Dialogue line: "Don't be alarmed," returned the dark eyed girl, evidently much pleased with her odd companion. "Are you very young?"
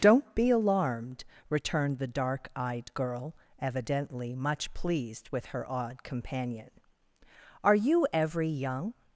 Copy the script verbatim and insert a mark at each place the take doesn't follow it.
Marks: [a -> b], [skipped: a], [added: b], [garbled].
"Don't be alarmed," returned the dark eyed girl, evidently much pleased with her odd companion. "Are you [very -> every] young?"